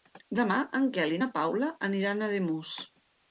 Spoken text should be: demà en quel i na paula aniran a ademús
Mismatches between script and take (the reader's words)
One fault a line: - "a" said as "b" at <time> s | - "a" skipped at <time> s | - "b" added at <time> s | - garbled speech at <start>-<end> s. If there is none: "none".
none